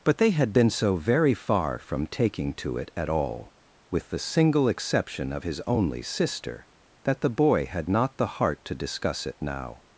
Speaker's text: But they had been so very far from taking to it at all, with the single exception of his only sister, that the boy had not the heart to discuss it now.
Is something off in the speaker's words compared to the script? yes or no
no